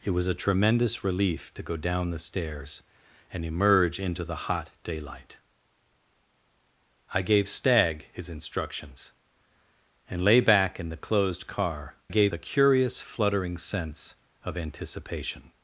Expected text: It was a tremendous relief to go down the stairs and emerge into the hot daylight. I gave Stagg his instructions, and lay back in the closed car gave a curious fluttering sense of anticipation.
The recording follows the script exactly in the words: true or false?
true